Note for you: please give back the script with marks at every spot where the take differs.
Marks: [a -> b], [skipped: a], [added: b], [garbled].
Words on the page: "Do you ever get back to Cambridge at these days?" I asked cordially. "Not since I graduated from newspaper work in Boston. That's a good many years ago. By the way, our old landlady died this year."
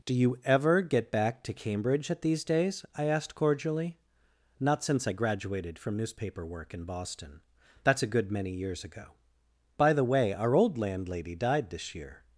"Do you ever get back to Cambridge at these days?" I asked cordially. "Not since I graduated from newspaper work in Boston. That's a good many years ago. By the way, our old landlady died this year."